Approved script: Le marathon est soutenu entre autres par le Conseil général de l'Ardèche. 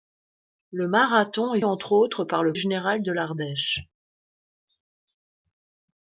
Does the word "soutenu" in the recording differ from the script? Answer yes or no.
yes